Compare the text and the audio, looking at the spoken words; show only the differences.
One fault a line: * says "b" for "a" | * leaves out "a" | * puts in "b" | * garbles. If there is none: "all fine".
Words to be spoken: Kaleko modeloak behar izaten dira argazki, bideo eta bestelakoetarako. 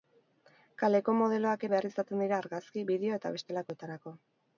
all fine